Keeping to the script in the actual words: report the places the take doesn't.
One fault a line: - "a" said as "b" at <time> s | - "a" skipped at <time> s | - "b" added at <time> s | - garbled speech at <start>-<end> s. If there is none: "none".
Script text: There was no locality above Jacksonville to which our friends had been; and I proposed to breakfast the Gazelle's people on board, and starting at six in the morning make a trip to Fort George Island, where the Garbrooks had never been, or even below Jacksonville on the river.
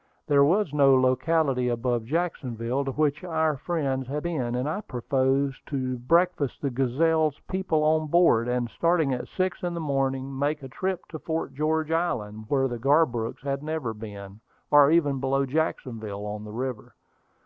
none